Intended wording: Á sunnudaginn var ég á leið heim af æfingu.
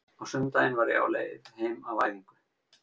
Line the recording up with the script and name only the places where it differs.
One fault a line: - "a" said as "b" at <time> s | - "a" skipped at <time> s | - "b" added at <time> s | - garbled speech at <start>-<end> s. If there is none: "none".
none